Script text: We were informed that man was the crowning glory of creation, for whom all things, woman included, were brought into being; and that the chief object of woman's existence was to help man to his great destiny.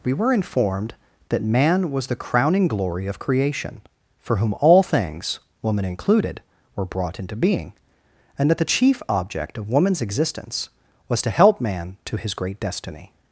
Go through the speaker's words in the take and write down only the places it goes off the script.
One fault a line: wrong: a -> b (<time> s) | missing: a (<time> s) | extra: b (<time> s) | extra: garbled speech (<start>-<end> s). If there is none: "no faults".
no faults